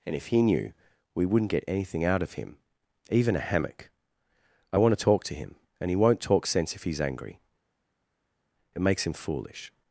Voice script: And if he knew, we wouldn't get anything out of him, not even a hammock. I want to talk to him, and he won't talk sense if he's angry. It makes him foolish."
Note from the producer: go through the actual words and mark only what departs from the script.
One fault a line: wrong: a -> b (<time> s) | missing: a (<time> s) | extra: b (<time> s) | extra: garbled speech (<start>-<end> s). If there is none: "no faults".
missing: not (2.6 s)